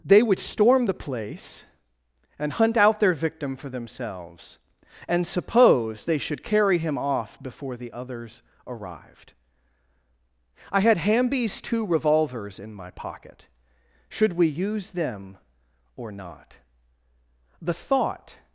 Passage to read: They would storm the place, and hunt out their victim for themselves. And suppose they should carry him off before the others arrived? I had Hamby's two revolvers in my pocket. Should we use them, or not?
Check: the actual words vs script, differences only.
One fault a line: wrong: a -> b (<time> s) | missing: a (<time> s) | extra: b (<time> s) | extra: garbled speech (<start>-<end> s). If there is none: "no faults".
extra: The thought (17.6 s)